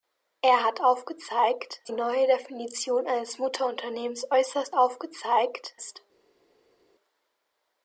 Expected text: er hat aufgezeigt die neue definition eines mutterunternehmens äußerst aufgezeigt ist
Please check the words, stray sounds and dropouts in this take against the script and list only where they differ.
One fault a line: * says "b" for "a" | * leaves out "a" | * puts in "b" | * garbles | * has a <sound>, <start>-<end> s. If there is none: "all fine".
all fine